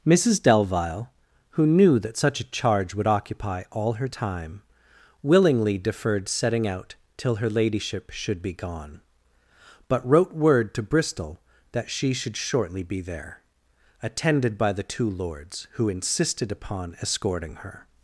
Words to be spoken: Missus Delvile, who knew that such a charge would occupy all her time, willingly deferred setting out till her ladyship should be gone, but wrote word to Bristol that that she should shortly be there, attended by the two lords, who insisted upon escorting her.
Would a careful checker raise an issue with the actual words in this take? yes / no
yes